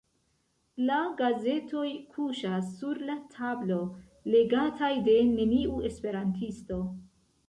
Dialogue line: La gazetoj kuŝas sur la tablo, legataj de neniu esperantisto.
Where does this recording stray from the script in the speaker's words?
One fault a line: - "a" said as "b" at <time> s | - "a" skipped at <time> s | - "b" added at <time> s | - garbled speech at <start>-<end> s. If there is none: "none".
none